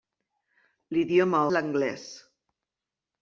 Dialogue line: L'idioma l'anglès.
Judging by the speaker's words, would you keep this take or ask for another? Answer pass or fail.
pass